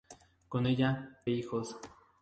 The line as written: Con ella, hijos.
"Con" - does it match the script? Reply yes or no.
yes